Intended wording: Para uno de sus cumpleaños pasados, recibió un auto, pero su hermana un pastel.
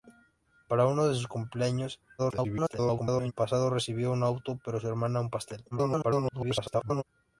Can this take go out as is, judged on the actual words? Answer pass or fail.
fail